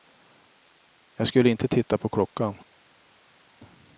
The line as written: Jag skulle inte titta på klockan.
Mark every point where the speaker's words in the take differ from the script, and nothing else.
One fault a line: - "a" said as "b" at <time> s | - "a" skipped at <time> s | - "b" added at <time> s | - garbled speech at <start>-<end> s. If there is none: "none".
none